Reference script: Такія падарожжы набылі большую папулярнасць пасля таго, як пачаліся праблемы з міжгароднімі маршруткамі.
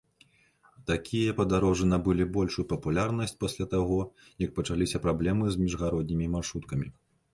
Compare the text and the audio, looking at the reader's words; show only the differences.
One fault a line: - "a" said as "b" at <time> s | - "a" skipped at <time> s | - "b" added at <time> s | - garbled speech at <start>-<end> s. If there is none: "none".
none